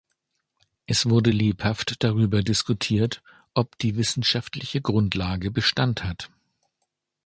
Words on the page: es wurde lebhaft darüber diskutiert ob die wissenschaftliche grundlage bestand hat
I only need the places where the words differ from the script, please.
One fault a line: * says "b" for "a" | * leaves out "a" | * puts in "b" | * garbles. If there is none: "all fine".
all fine